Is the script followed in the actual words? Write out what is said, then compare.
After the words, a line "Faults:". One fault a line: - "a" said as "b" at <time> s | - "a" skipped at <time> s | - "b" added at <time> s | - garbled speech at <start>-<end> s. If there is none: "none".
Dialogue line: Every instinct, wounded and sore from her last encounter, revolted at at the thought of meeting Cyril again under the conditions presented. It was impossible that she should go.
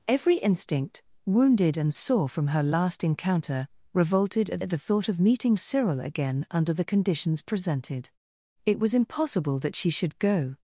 Every instinct, wounded and sore from her last encounter, revolted at at the thought of meeting Cyril again under the conditions presented. It was impossible that she should go.
Faults:
none